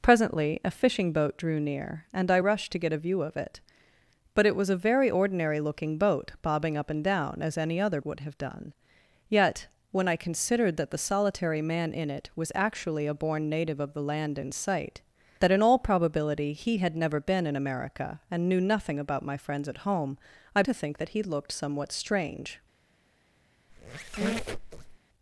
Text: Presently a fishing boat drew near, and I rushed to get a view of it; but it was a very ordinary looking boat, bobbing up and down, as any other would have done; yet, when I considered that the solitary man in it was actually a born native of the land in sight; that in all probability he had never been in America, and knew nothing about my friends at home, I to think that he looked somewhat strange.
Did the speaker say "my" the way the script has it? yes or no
yes